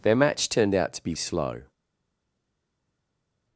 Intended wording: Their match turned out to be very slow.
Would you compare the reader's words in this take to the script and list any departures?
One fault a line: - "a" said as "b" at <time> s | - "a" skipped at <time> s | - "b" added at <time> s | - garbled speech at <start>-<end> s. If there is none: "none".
- "very" skipped at 1.1 s